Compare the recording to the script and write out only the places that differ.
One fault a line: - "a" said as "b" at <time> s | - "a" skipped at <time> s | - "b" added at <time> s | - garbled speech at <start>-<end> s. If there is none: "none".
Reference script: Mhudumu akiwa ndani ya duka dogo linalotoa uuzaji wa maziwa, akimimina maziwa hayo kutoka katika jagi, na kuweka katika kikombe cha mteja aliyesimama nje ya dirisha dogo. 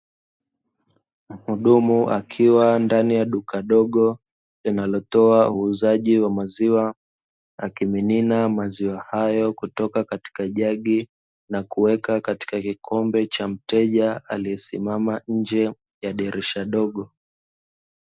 none